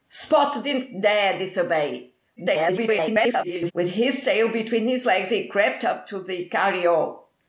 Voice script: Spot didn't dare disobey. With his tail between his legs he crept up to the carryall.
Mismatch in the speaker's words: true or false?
true